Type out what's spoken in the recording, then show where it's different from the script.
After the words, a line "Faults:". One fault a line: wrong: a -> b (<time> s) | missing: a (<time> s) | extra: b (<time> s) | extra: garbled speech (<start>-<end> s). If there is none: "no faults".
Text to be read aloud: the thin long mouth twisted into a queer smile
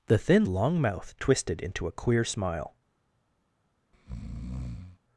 the thin long mouth twisted into a queer smile
Faults:
no faults